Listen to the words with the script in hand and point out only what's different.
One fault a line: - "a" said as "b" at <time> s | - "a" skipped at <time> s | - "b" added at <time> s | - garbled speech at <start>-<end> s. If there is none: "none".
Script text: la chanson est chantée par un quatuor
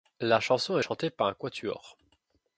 none